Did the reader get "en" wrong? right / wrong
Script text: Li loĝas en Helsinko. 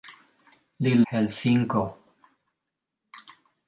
wrong